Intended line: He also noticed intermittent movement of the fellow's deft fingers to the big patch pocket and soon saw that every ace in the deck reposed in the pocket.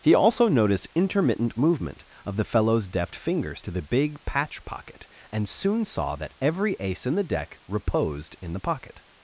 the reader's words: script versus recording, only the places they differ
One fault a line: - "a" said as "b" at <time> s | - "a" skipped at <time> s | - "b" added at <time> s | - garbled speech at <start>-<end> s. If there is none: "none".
none